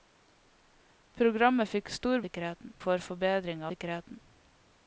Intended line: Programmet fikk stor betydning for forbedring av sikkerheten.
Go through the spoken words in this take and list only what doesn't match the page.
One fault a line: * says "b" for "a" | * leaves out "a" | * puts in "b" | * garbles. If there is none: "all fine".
* says "sikkerheten" for "betydning"
* leaves out "av"